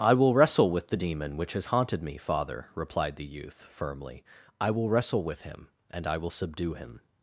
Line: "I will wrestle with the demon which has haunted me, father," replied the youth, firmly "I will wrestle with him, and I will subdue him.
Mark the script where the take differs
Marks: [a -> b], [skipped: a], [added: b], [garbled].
"I will wrestle with the demon which has haunted me, father," replied the youth, firmly "I will wrestle with him, and I will subdue him.